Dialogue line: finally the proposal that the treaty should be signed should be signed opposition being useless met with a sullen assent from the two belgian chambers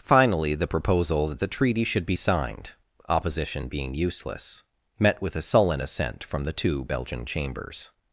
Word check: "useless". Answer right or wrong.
right